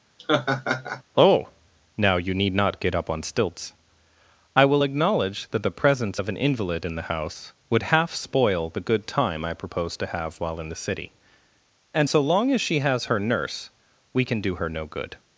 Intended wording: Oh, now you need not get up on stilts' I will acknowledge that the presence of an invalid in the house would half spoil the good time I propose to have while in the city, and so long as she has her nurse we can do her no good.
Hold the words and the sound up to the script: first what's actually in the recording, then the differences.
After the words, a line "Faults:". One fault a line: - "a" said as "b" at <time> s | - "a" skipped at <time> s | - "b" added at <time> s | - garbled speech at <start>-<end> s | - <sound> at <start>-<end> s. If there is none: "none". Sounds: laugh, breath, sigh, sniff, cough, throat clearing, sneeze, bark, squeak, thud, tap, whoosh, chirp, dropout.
Oh, now you need not get up on stilts' I will acknowledge that the presence of an invalid in the house would half spoil the good time I propose to have while in the city, and so long as she has her nurse we can do her no good.
Faults:
- laugh at 0.2-1.0 s